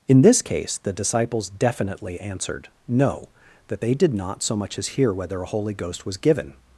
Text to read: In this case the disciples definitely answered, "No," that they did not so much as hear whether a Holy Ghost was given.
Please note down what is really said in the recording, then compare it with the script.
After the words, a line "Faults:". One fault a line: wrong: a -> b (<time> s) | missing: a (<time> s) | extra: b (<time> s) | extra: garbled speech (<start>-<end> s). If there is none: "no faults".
In this case the disciples definitely answered, "No," that they did not so much as hear whether a Holy Ghost was given.
Faults:
no faults